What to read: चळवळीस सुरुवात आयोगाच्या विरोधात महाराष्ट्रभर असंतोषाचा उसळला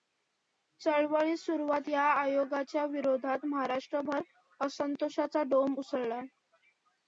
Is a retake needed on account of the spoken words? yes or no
yes